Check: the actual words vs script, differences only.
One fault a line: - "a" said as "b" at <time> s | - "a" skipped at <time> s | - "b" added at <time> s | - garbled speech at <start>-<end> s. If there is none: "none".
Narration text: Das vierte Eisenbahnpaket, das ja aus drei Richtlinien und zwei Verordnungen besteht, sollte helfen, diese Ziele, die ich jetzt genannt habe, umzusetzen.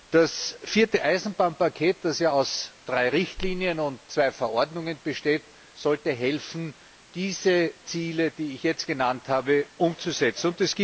none